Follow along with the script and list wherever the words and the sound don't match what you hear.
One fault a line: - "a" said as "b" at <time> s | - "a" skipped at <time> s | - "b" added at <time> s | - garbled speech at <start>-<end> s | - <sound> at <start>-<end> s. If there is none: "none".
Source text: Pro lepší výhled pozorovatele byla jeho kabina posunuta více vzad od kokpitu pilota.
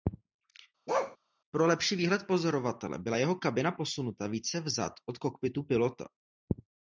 - bark at 0.9-1.2 s